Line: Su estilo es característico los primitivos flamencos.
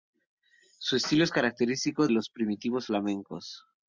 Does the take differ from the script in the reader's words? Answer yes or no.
no